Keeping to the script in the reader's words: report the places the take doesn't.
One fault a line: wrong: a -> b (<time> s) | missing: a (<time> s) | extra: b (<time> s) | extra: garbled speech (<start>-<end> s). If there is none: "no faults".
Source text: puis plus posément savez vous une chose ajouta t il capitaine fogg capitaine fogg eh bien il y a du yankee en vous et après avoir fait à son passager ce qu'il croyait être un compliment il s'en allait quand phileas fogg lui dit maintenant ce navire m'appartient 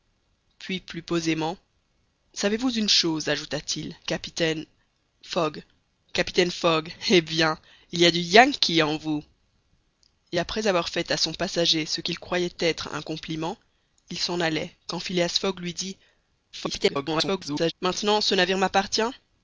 extra: garbled speech (16.5-17.7 s)